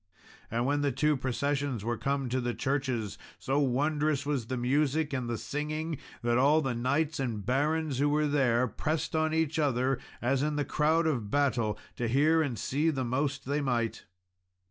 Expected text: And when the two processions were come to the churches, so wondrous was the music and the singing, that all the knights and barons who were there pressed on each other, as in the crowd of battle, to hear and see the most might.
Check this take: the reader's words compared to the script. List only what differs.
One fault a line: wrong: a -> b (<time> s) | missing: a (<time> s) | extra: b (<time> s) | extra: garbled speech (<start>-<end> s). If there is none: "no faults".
extra: they (13.4 s)